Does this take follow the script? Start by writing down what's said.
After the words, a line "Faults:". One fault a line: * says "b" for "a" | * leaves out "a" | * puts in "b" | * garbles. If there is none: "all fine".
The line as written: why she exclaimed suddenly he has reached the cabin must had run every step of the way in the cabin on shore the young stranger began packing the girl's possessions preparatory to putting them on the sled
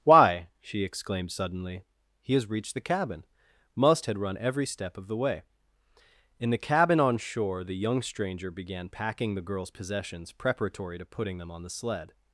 why she exclaimed suddenly he has reached the cabin must had run every step of the way in the cabin on shore the young stranger began packing the girl's possessions preparatory to putting them on the sled
Faults:
all fine